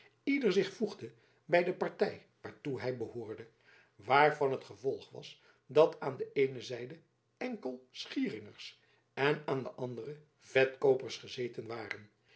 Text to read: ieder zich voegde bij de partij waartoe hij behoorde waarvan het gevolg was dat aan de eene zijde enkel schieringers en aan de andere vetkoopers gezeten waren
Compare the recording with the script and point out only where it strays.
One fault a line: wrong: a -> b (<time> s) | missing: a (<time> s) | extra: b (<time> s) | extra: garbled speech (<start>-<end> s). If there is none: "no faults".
no faults